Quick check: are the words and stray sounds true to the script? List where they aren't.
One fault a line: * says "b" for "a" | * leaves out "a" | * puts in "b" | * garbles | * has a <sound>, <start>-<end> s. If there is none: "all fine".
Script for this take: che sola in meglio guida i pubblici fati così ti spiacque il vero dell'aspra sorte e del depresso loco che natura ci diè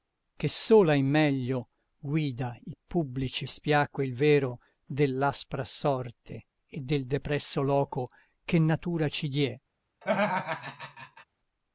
* leaves out "fati così ti"
* has a laugh, 10.0-11.3 s